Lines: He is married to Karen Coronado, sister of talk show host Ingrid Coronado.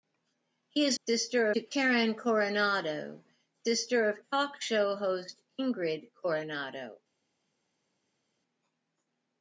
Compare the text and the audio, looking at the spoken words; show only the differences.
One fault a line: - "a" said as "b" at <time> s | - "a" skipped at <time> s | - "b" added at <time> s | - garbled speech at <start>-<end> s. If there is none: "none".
- "married" said as "sister" at 1.0 s